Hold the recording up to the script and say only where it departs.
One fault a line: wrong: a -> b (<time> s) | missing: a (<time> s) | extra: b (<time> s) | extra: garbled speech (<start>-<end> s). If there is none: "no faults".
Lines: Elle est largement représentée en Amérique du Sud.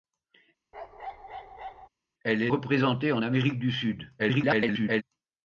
missing: largement (2.5 s)
extra: garbled speech (4.2-5.0 s)